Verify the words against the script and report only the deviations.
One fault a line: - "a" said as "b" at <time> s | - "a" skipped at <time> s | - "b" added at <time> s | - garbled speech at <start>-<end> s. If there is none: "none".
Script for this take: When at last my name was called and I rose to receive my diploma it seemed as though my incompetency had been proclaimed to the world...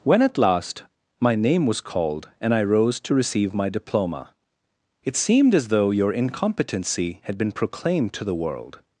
- "my" said as "your" at 5.9 s